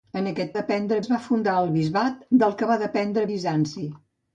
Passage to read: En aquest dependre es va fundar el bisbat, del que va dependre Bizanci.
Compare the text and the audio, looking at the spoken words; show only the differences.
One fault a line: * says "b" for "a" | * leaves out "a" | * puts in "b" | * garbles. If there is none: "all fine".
all fine